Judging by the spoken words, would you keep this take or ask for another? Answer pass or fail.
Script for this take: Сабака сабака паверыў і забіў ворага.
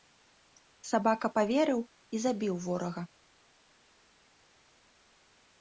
fail